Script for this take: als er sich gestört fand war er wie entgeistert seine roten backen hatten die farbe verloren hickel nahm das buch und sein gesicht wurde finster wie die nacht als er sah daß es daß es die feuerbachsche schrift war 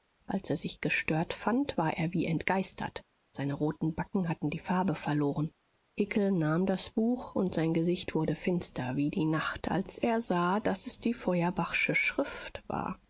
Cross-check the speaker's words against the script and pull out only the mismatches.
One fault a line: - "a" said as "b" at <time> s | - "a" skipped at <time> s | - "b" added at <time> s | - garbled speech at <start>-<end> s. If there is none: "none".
- "daß es" skipped at 11.0 s